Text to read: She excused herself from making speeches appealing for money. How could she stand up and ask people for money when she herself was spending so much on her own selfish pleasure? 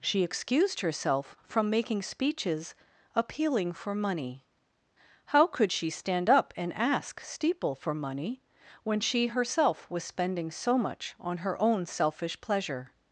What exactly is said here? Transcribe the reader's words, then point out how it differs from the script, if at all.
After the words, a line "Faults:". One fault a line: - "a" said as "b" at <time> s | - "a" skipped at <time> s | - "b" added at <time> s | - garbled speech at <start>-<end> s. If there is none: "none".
She excused herself from making speeches appealing for money. How could she stand up and ask steeple for money when she herself was spending so much on her own selfish pleasure?
Faults:
- "people" said as "steeple" at 7.2 s